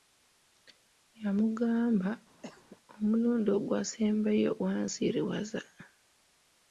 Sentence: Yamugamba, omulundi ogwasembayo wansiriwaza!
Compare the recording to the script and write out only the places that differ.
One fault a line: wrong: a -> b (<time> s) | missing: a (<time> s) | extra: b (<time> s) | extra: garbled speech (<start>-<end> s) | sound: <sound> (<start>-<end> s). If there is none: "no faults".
sound: cough (2.4-2.8 s)